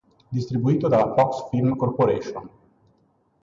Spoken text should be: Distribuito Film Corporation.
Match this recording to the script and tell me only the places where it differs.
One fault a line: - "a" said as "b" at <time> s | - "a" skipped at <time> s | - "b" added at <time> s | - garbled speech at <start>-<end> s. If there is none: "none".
- "dalla Fox" added at 0.9 s